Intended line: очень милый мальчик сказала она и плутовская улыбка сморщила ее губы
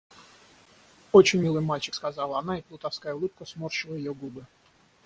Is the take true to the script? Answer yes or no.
yes